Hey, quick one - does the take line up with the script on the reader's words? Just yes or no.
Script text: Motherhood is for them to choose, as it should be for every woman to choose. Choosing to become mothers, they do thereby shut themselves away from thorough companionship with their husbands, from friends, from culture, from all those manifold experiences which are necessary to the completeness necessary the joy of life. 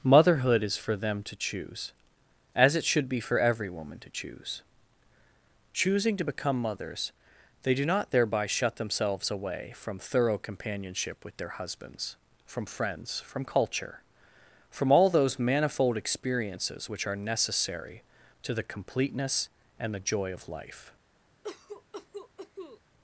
no